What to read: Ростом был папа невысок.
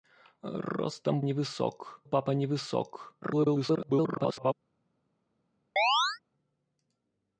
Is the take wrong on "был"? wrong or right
wrong